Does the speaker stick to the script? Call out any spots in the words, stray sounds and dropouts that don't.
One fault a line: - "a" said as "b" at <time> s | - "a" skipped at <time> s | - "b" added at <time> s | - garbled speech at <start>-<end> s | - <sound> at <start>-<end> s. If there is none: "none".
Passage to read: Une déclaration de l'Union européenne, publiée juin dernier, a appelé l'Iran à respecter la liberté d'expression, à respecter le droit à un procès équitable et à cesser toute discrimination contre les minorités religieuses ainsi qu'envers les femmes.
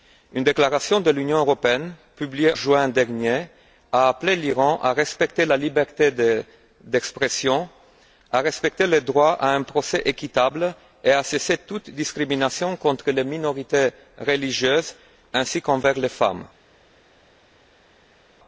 none